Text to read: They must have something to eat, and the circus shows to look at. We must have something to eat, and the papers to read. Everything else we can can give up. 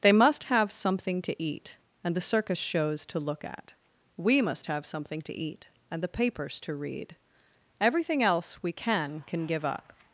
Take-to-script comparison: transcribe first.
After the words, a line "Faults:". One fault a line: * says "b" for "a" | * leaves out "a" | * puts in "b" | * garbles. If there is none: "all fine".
They must have something to eat, and the circus shows to look at. We must have something to eat, and the papers to read. Everything else we can can give up.
Faults:
all fine